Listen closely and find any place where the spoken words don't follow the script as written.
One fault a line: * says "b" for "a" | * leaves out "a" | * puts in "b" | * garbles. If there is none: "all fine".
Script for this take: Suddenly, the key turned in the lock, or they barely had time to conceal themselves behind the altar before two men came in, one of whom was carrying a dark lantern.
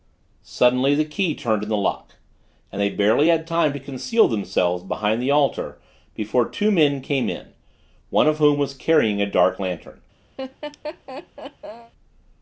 * says "and" for "or"